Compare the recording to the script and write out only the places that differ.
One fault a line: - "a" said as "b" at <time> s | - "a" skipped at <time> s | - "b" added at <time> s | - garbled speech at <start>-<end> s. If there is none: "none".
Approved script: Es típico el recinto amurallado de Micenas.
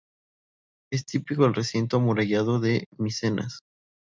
none